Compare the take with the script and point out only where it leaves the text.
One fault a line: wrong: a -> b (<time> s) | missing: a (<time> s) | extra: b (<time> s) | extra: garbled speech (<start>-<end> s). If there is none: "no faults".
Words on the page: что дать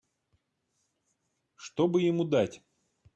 extra: бы ему (1.9 s)